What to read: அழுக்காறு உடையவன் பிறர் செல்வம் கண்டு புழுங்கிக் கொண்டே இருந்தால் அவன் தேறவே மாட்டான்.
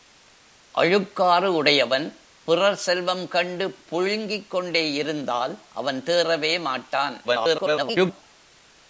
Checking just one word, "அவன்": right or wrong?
right